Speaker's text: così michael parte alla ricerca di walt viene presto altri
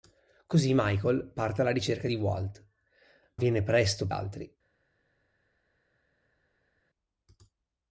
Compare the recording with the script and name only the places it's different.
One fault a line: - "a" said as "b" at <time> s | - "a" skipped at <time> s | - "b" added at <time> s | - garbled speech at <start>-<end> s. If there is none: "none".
none